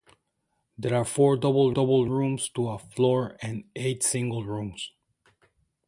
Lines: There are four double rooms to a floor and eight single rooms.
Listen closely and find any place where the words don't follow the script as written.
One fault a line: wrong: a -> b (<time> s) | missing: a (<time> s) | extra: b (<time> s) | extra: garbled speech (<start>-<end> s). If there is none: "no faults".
extra: double (1.7 s)